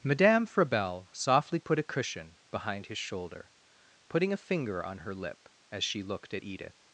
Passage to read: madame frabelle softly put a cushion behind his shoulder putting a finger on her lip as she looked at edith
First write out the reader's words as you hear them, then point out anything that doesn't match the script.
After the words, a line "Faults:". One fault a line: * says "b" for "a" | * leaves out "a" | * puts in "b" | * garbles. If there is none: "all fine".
madame frabelle softly put a cushion behind his shoulder putting a finger on her lip as she looked at edith
Faults:
all fine